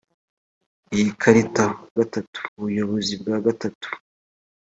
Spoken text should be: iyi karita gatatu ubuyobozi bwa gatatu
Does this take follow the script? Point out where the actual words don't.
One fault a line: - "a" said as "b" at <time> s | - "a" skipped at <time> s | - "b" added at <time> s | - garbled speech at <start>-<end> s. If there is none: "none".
none